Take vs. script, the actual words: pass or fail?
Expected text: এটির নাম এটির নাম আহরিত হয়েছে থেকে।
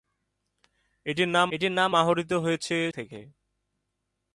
pass